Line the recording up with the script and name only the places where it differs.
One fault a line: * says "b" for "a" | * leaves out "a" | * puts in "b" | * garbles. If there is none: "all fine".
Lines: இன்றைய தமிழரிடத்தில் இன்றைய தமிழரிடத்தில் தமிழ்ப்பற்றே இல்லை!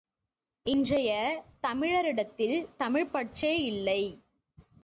* leaves out "இன்றைய தமிழரிடத்தில்"